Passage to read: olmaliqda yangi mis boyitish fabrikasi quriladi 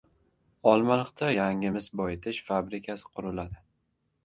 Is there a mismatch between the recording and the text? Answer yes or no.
no